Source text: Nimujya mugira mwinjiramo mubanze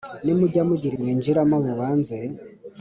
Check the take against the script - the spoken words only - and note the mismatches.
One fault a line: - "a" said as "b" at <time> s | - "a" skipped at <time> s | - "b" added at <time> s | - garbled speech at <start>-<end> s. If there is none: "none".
none